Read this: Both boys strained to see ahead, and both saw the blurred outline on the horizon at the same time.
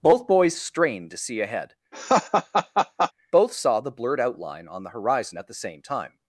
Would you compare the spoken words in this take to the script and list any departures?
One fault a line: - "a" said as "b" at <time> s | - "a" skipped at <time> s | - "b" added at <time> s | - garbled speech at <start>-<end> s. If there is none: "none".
- "and" skipped at 1.8 s